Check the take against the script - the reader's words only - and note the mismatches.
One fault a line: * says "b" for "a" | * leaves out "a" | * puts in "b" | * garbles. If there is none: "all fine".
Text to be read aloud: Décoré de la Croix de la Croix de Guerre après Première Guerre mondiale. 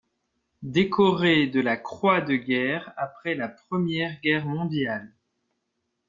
* leaves out "la Croix de"
* puts in "la"